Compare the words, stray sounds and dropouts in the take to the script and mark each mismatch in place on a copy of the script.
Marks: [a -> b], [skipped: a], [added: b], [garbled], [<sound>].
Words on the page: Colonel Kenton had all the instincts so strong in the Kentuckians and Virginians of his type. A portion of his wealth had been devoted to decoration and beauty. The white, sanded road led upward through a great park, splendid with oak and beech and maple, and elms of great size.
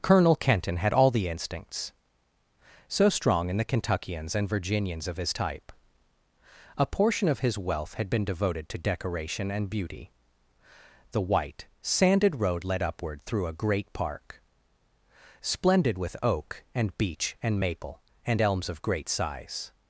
Colonel Kenton had all the instincts so strong in the Kentuckians and Virginians of his type. A portion of his wealth had been devoted to decoration and beauty. The white, sanded road led upward through a great park, splendid with oak and beech and maple, and elms of great size.